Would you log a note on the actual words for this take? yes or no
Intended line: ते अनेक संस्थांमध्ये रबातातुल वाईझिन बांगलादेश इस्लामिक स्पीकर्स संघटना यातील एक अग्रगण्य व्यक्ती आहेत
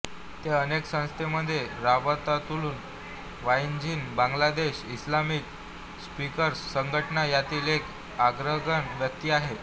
no